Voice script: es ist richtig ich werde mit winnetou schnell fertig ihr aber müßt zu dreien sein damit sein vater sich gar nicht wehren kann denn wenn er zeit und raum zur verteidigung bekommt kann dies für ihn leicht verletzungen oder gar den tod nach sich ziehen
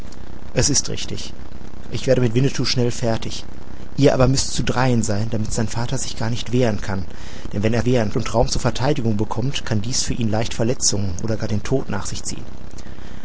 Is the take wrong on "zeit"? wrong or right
wrong